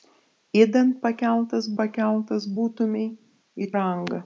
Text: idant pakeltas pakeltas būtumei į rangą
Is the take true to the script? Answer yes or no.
yes